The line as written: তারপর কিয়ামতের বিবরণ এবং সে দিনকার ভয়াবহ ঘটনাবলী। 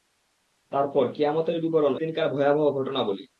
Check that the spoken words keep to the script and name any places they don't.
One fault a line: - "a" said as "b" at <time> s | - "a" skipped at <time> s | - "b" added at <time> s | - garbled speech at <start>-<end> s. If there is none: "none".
- "এবং সে" skipped at 1.9 s